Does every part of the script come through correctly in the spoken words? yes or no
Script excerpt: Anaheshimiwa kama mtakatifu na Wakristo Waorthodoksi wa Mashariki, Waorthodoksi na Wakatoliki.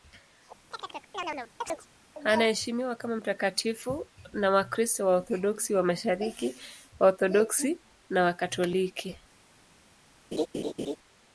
yes